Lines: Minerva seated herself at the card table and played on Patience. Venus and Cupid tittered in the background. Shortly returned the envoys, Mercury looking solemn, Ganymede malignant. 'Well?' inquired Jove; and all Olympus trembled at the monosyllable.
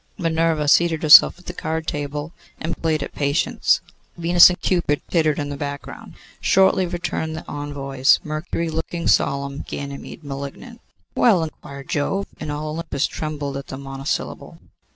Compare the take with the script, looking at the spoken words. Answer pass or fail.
fail